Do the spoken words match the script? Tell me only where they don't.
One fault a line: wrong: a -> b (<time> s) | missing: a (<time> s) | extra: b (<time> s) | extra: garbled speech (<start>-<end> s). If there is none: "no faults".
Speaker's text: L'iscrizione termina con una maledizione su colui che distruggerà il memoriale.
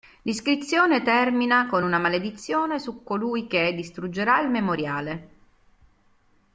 no faults